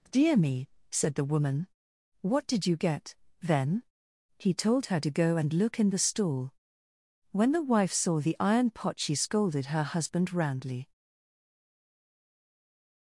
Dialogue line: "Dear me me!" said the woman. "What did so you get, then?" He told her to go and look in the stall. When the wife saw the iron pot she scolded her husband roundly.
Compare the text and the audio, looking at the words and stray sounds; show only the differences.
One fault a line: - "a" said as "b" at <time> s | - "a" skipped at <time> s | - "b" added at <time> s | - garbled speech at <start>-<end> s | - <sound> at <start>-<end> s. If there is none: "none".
- "me" skipped at 0.7 s
- "so" skipped at 2.6 s